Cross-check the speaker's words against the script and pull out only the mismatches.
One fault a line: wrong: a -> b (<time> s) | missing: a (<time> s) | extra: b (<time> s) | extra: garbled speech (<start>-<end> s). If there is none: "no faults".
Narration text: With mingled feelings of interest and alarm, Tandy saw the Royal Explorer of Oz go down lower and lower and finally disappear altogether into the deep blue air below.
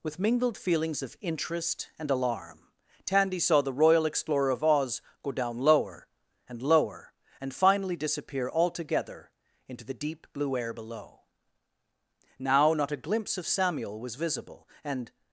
extra: Now not a glimpse of Samuel was visible and (12.4 s)